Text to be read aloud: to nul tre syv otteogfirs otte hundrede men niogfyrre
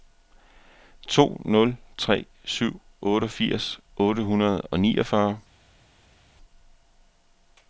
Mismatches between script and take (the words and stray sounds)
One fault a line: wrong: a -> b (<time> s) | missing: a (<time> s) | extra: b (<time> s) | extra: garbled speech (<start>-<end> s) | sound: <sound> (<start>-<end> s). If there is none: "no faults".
wrong: men -> og (4.6 s)